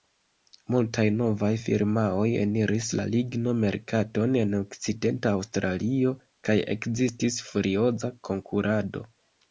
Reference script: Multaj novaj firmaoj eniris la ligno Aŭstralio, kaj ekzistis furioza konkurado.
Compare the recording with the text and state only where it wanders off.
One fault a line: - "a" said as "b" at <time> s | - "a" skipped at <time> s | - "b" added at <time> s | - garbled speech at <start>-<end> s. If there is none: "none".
- "merkaton en Okcidenta" added at 3.6 s